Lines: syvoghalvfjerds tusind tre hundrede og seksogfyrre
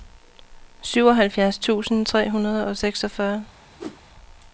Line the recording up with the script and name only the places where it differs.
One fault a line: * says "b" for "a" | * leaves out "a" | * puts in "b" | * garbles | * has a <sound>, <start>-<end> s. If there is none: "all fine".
* has a whoosh, 3.8-4.0 s